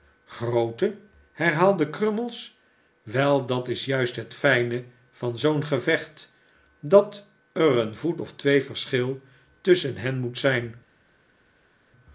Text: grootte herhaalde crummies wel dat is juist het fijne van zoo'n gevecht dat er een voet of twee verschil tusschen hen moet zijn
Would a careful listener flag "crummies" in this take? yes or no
no